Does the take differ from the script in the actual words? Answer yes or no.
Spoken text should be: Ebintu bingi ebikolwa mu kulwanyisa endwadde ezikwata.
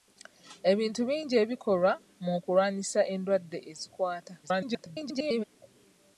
yes